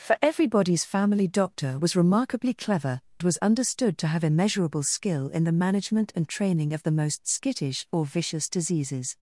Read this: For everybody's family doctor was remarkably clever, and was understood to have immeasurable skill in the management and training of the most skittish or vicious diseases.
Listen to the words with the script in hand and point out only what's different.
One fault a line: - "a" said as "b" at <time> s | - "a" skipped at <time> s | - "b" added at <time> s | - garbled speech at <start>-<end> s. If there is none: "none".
- "and" skipped at 3.0 s